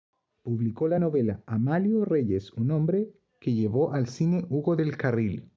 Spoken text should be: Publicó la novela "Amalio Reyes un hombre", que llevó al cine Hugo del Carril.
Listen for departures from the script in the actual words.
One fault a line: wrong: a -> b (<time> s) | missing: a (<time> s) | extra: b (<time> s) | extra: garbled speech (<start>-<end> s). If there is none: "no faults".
no faults